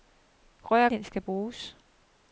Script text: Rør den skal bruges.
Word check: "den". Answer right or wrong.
right